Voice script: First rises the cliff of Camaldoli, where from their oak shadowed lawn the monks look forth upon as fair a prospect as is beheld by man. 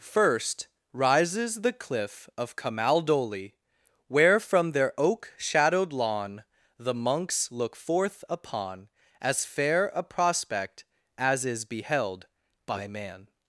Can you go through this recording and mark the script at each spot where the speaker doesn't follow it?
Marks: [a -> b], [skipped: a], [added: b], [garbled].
First rises the cliff of Camaldoli, where from their oak shadowed lawn the monks look forth upon as fair a prospect as is beheld by man.